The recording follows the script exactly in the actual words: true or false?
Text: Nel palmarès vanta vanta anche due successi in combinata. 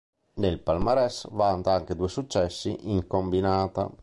false